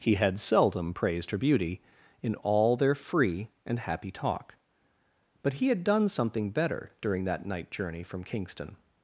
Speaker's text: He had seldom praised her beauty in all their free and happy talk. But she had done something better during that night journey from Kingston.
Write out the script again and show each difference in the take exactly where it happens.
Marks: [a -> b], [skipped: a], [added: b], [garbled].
He had seldom praised her beauty in all their free and happy talk. But [she -> he] had done something better during that night journey from Kingston.